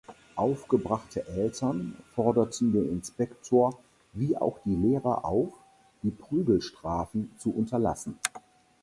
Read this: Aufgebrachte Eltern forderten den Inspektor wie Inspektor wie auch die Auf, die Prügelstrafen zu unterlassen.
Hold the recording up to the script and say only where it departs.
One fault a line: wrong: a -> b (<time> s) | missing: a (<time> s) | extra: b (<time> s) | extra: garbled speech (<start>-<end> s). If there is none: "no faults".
missing: Inspektor wie (4.3 s)
extra: Lehrer (4.7 s)